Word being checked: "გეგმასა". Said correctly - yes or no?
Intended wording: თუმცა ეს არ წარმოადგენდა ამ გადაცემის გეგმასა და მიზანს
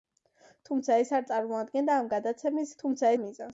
no